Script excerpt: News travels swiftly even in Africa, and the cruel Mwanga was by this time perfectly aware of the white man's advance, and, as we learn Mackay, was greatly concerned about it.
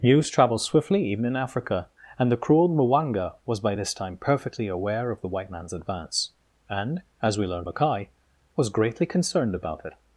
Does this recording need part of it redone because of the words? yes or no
no